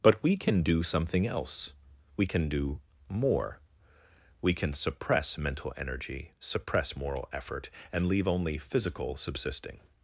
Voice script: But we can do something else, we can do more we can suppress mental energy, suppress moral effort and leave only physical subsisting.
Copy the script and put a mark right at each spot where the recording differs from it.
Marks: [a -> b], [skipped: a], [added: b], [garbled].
But we can do something else, we can do more we can suppress mental energy, suppress moral effort and leave only physical subsisting.